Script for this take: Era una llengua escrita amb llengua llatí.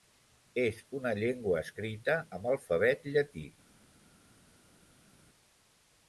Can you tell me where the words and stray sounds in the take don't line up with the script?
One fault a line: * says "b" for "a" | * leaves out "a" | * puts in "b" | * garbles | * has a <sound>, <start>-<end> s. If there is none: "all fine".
* says "És" for "Era"
* says "alfabet" for "llengua"